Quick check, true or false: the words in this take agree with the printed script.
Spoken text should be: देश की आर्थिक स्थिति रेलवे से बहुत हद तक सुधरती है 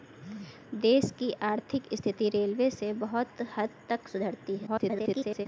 false